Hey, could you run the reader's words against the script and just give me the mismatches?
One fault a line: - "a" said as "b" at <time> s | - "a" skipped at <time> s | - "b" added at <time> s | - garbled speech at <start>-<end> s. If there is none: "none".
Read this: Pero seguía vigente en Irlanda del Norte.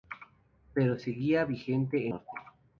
- "en Irlanda del" skipped at 2.1 s